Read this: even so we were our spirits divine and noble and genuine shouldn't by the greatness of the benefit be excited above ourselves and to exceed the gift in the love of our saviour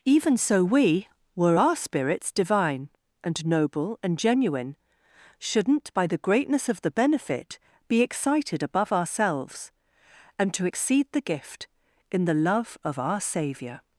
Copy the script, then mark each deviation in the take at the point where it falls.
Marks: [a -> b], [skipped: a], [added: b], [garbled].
even so we were our spirits divine and noble and genuine shouldn't by the greatness of the benefit be excited above ourselves and to exceed the gift in the love of our saviour